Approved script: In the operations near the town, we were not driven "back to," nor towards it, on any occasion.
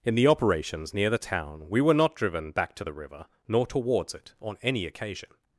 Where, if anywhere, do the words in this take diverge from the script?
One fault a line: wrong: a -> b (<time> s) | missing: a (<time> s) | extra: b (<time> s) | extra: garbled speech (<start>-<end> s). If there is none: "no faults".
extra: the river (2.8 s)